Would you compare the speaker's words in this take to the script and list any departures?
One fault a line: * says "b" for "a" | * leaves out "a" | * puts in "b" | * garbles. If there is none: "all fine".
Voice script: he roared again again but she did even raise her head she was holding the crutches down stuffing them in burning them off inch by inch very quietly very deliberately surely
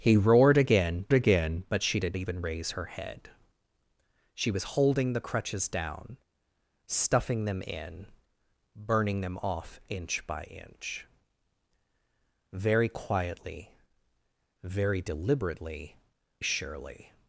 all fine